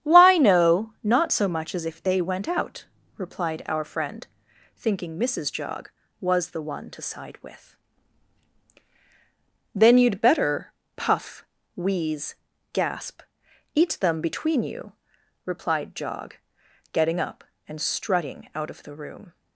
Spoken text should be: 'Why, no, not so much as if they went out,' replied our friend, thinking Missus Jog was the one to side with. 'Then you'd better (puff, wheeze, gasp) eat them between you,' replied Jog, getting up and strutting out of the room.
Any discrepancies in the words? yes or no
no